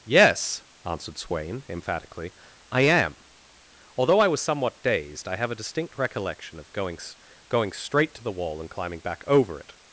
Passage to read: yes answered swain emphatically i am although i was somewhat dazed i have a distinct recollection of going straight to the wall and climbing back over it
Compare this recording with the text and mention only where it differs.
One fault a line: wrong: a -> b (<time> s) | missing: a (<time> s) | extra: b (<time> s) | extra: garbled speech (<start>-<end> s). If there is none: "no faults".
extra: going (7.5 s)